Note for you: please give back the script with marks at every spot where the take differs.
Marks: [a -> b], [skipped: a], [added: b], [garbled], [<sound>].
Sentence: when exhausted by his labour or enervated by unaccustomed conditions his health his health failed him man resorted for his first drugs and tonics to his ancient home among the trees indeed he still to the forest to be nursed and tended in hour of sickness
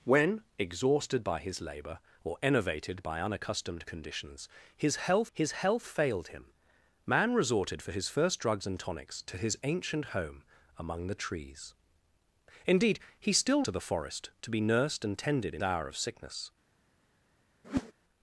when exhausted by his labour or enervated by unaccustomed conditions his health his health failed him man resorted for his first drugs and tonics to his ancient home among the trees indeed he still to the forest to be nursed and tended in hour of sickness [whoosh]